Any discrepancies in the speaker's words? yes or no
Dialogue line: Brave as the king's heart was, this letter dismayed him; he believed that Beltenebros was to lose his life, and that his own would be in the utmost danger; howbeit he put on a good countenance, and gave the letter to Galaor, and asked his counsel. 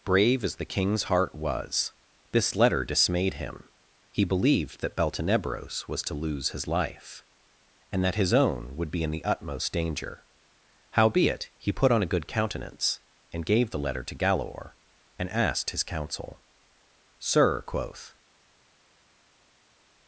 yes